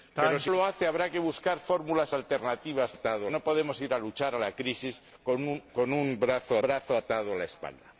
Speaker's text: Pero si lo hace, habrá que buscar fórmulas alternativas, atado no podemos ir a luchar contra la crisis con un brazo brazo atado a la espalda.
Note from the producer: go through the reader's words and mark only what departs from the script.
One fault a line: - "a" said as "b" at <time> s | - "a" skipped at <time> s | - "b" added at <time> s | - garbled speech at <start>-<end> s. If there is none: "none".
none